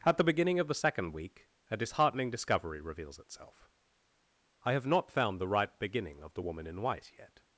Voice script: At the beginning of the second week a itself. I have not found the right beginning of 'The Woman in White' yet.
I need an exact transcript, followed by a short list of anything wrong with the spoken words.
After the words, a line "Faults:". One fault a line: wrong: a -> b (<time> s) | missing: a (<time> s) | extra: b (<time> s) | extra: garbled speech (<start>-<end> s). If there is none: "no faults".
At the beginning of the second week a disheartening discovery reveals itself. I have not found the right beginning of 'The Woman in White' yet.
Faults:
extra: disheartening discovery reveals (1.8 s)